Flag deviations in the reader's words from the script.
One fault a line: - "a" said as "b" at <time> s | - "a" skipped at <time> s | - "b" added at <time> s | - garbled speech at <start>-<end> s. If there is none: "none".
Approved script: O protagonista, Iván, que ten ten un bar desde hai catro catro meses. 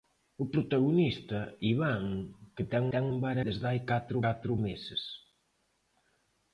none